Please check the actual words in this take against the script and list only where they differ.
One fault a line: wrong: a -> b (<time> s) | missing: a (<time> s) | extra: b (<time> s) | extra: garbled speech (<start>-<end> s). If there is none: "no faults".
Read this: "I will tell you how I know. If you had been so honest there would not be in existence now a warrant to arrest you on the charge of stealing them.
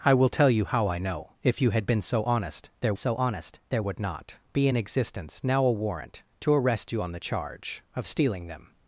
extra: so honest there (2.9 s)